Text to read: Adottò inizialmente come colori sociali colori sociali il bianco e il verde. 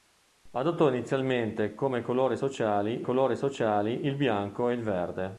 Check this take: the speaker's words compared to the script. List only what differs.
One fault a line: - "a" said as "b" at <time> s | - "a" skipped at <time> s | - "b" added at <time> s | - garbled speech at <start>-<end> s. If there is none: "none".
none